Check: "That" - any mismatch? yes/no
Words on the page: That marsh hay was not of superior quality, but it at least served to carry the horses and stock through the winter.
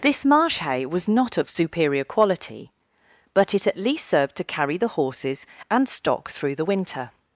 yes